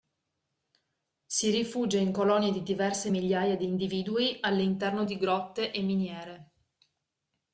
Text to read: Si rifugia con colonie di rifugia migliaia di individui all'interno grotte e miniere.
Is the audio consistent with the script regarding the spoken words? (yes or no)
no